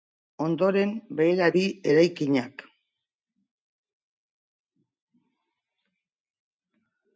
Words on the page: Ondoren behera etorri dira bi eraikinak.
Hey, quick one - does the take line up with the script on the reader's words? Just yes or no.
no